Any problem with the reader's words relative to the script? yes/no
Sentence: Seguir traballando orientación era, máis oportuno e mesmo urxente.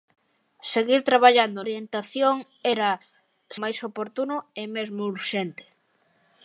no